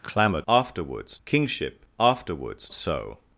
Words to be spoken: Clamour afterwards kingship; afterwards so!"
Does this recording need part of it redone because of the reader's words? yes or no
no